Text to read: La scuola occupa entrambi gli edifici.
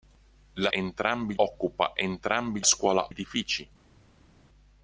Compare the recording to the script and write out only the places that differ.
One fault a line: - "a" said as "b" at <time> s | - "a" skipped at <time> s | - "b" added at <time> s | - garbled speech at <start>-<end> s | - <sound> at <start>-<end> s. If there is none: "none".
- "scuola" said as "entrambi" at 0.7 s
- "gli" said as "scuola" at 2.6 s